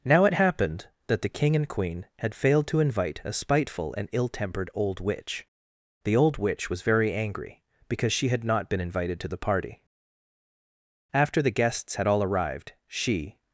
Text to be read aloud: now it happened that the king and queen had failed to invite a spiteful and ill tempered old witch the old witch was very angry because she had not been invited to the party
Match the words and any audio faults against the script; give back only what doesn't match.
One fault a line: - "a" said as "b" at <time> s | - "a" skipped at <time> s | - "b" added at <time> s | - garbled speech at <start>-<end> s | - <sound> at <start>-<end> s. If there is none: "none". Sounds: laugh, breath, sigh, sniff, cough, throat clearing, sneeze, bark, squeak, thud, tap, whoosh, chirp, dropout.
- "after the guests had all arrived she" added at 11.1 s